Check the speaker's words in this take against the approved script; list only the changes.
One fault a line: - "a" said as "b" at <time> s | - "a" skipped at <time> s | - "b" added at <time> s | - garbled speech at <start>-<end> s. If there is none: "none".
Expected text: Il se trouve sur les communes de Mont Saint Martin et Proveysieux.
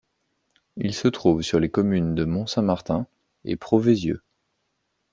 none